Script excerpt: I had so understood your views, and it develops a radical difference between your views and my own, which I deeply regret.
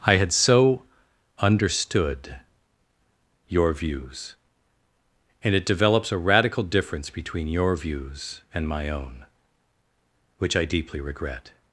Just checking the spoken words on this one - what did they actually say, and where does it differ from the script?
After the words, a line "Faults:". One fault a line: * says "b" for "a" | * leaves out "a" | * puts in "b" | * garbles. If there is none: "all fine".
I had so understood your views, and it develops a radical difference between your views and my own, which I deeply regret.
Faults:
all fine